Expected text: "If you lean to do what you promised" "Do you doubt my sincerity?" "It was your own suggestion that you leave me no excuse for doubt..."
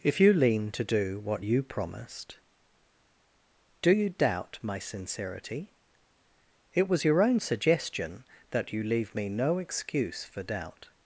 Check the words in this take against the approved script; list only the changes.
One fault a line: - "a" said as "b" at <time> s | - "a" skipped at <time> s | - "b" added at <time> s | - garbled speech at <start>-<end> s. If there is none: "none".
none